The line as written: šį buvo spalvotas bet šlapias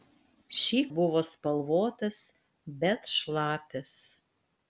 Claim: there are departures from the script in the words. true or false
false